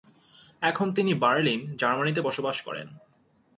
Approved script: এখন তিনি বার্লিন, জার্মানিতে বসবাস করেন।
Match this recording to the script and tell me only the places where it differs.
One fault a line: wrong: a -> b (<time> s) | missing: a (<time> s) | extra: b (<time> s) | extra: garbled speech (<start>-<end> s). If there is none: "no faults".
no faults